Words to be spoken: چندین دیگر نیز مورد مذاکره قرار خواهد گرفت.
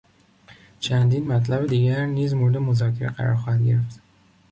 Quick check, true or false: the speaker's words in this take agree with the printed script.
false